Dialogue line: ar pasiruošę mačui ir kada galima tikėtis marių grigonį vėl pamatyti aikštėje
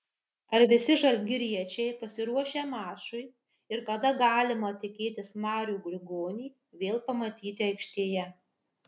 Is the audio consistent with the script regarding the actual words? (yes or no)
no